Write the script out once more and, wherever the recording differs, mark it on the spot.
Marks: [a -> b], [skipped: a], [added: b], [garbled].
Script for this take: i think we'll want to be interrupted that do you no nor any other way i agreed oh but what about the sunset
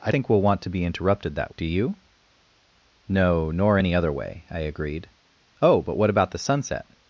i think we'll want to be interrupted that do you no nor any other way i agreed oh but what about the sunset